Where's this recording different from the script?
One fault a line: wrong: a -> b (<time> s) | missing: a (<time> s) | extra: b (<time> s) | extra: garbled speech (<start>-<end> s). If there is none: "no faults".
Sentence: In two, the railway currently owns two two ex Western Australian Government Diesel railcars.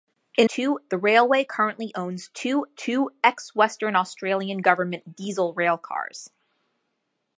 no faults